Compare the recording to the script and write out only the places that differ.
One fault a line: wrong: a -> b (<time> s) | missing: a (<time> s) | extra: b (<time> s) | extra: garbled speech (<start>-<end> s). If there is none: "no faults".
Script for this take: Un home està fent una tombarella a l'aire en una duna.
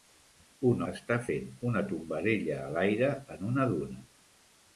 missing: home (0.8 s)